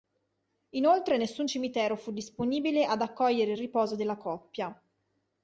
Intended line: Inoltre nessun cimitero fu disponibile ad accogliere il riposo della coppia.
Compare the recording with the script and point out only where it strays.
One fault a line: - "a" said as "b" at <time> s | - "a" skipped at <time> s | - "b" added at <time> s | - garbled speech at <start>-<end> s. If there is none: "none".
none